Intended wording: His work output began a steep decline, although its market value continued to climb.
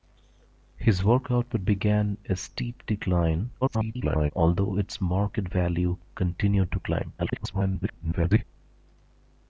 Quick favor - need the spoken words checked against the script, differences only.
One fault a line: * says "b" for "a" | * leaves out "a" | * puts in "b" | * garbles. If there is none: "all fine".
* garbles
* garbles